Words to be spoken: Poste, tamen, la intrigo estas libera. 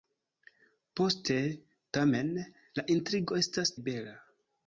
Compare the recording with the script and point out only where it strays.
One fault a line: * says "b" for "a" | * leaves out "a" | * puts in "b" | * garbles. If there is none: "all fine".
all fine